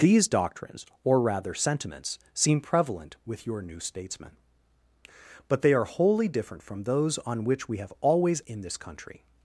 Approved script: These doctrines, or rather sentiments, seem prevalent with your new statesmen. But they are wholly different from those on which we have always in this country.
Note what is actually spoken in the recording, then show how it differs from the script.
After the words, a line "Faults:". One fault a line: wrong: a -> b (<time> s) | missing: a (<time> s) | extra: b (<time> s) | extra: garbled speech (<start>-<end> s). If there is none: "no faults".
These doctrines, or rather sentiments, seem prevalent with your new statesmen. But they are wholly different from those on which we have always in this country.
Faults:
no faults